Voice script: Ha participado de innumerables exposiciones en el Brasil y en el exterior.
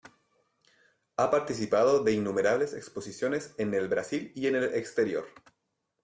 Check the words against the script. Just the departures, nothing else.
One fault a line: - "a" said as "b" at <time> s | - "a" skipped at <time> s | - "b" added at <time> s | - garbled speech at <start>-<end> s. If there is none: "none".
none